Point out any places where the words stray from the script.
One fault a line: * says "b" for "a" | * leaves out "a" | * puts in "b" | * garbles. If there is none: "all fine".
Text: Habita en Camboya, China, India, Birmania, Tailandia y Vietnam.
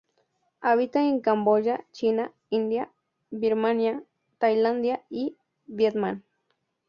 all fine